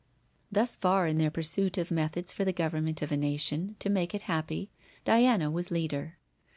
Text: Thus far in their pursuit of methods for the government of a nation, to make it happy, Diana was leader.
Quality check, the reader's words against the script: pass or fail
pass